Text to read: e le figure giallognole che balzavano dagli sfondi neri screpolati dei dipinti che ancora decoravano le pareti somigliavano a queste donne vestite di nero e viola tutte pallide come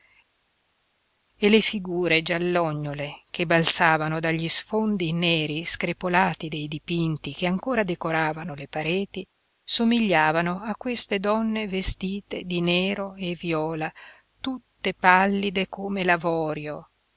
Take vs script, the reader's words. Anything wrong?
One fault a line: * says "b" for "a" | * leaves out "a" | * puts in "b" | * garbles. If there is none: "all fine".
all fine